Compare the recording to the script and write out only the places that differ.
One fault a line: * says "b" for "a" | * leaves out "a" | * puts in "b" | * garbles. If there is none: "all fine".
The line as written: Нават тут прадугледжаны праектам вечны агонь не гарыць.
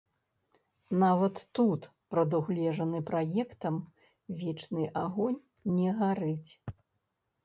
all fine